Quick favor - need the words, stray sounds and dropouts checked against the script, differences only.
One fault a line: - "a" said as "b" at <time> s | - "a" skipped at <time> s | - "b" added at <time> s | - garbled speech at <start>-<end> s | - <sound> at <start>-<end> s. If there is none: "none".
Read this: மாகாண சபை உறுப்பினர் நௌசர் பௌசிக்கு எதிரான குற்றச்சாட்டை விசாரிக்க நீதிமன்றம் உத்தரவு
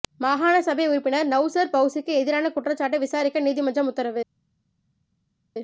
none